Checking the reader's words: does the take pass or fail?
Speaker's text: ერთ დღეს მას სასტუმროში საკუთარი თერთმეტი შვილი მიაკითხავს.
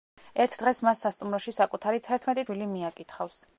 pass